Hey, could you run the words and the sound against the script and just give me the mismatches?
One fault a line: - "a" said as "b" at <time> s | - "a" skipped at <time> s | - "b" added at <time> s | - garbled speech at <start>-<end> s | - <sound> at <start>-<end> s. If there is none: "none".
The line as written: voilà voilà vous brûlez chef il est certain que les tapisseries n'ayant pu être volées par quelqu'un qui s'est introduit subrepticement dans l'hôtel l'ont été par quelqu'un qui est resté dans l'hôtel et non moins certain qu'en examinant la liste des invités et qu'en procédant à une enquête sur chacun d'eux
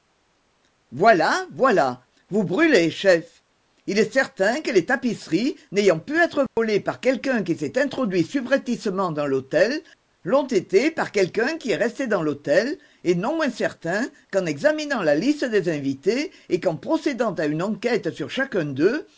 - dropout at 6.5-6.6 s